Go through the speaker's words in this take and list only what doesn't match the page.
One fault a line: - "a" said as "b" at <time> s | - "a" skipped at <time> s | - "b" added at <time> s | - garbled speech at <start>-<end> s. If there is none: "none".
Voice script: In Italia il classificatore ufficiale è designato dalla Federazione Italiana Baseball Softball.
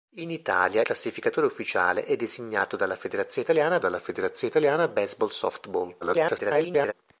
- "il" skipped at 0.8 s
- "dalla Federazione Italiana" added at 3.8 s
- garbled speech at 6.0-6.9 s